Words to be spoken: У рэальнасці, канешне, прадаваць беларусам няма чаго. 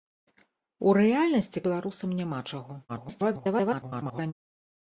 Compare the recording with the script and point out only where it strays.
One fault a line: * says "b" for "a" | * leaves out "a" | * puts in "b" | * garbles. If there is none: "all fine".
* leaves out "канешне прадаваць"
* garbles